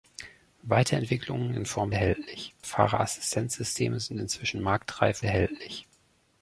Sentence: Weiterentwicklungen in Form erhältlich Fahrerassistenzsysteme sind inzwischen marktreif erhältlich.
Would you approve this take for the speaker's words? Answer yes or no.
yes